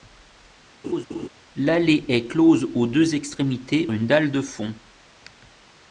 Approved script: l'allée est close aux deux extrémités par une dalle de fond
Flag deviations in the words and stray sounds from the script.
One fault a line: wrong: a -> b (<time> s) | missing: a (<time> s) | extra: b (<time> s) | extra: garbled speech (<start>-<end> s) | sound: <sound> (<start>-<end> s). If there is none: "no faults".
sound: laugh (0.8-1.3 s)
missing: par (3.9 s)